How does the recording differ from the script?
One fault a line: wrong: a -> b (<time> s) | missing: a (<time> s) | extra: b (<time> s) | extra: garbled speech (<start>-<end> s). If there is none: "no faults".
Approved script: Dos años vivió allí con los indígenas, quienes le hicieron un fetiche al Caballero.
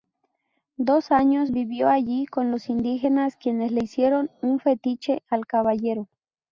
no faults